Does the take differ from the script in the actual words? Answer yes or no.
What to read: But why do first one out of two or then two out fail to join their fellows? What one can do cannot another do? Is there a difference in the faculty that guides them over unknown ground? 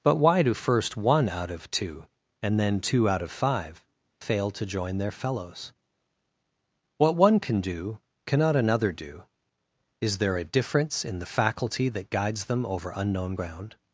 yes